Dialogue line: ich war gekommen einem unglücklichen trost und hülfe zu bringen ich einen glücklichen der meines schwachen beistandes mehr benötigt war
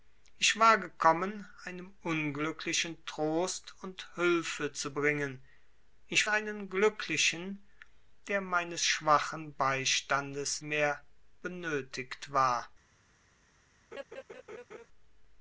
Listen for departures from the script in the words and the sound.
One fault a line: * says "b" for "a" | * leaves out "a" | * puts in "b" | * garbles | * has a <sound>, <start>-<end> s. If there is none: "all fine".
* has a laugh, 13.9-14.9 s